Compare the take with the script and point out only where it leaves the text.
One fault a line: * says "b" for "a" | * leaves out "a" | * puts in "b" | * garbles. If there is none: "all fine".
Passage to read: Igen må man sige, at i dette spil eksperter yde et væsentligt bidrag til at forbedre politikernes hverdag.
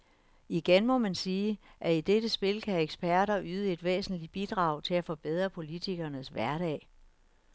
* puts in "kan"